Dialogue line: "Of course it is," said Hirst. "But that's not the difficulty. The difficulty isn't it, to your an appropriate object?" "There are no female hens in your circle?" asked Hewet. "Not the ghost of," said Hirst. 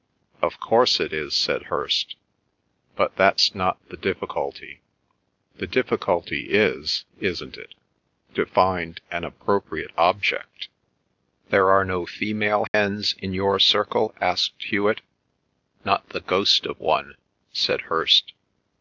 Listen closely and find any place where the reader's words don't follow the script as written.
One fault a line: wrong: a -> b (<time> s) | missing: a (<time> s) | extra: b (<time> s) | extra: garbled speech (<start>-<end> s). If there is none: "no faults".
extra: is (6.5 s)
wrong: your -> find (8.5 s)
extra: one (16.8 s)